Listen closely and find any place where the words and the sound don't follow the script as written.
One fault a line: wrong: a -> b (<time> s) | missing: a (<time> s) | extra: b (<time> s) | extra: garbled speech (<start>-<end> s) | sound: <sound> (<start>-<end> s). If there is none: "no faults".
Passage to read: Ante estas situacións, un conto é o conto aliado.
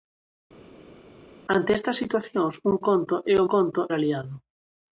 no faults